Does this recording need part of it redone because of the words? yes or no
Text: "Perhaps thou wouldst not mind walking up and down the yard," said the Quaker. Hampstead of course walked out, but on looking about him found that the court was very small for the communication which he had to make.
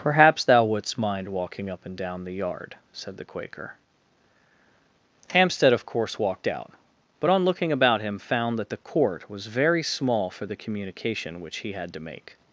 yes